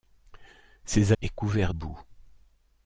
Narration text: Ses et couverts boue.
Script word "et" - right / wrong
right